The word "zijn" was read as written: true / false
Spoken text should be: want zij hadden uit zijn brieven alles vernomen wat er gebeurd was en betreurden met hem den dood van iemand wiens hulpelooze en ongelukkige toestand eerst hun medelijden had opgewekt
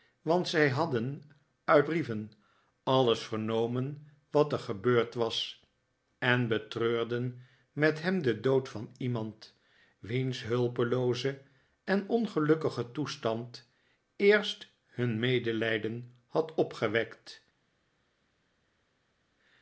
false